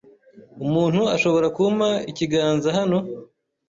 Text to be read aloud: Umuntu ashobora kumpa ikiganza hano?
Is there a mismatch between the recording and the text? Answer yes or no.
no